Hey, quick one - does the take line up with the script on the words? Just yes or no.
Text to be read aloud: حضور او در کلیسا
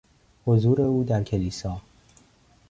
yes